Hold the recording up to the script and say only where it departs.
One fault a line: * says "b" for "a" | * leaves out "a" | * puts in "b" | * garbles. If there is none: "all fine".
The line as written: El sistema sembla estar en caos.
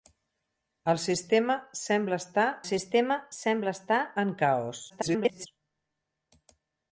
* puts in "sistema sembla estar"
* garbles